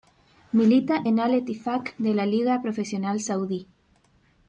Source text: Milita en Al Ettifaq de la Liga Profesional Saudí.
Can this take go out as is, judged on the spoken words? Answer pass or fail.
pass